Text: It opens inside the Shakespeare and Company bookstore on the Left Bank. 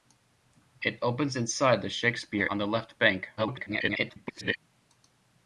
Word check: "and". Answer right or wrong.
wrong